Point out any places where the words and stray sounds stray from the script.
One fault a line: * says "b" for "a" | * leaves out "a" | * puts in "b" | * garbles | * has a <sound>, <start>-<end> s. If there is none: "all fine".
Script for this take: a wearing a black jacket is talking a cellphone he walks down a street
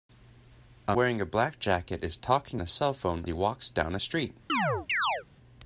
* has a chirp, 4.5-5.2 s